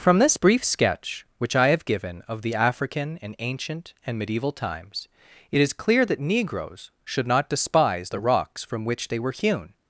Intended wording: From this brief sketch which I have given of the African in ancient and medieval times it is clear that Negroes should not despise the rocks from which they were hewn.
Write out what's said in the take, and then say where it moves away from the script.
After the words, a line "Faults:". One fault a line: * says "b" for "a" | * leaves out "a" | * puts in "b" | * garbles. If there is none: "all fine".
From this brief sketch which I have given of the African in ancient and medieval times it is clear that Negroes should not despise the rocks from which they were hewn.
Faults:
all fine